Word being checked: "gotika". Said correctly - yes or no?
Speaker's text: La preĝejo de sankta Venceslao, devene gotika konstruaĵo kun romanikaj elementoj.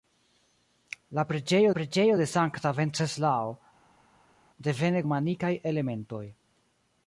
no